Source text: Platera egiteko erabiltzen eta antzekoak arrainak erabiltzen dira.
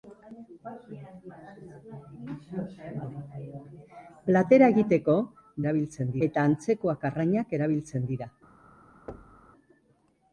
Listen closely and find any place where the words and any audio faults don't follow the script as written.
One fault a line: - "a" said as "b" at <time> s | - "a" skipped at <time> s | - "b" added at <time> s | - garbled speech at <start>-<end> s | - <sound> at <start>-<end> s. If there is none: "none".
- thud at 9.1-9.5 s